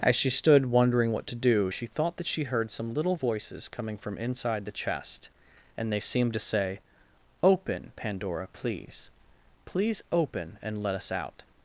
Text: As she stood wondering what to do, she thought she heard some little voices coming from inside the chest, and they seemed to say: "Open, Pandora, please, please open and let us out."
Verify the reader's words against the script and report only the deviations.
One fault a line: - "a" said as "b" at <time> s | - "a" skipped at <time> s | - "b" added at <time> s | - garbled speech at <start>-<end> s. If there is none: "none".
- "that" added at 2.2 s